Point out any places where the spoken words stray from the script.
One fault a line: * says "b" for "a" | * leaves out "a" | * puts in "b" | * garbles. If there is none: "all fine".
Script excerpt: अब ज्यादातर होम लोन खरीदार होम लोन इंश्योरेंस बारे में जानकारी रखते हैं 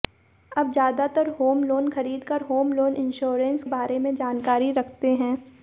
all fine